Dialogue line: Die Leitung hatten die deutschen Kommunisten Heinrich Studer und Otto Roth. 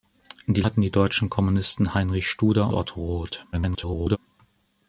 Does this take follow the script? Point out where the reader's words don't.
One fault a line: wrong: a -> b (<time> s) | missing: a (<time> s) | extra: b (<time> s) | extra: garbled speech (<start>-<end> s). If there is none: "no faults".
missing: Leitung (0.6 s)
missing: und (2.7 s)
extra: garbled speech (3.5-4.2 s)